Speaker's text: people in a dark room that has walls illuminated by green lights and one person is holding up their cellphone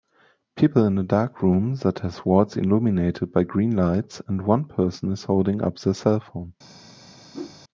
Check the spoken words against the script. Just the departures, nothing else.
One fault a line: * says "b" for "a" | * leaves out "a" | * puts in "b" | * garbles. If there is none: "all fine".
all fine